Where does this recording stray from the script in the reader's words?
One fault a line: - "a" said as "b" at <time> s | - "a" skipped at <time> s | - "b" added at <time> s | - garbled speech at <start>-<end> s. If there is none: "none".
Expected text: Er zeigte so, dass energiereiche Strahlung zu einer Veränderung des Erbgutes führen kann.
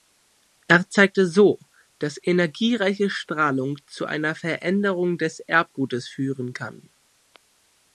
none